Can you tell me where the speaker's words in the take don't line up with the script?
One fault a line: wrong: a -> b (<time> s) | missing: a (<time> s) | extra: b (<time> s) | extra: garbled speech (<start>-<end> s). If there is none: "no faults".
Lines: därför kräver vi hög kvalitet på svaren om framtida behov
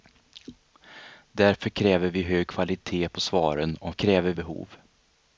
wrong: framtida -> kräver (3.9 s)